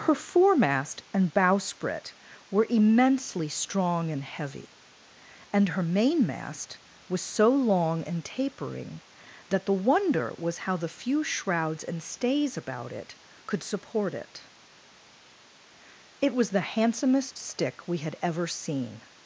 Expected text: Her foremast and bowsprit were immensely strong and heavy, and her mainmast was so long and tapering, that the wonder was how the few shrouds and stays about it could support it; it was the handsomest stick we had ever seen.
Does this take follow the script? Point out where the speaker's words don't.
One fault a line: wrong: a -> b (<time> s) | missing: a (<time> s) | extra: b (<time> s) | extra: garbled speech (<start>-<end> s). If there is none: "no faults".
no faults